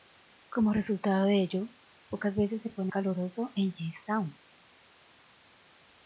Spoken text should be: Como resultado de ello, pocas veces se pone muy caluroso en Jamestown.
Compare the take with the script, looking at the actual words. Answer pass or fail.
fail